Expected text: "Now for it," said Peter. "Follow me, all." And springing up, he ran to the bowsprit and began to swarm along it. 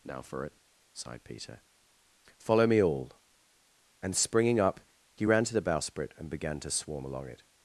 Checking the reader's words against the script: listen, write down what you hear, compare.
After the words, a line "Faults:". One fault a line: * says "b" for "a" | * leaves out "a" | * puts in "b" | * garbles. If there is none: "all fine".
"Now for it," sighed Peter. "Follow me, all." And springing up, he ran to the bowsprit and began to swarm along it.
Faults:
* says "sighed" for "said"